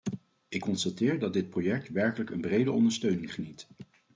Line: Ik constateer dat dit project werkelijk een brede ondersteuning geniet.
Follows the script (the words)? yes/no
yes